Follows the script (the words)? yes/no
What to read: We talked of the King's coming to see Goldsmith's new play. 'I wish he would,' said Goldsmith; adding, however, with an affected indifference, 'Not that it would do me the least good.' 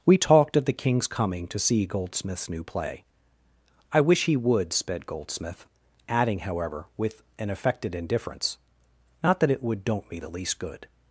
no